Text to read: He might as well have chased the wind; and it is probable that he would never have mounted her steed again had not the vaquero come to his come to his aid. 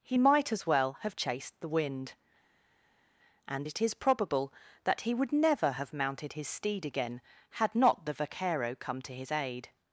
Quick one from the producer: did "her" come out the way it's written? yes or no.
no